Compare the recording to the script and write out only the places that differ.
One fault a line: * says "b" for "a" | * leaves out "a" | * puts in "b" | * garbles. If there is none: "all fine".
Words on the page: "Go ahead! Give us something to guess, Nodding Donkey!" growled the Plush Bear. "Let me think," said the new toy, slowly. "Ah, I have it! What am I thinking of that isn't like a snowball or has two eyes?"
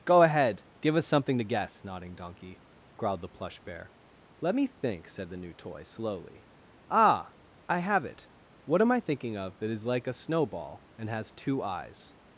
* says "is" for "isn't"
* says "and" for "or"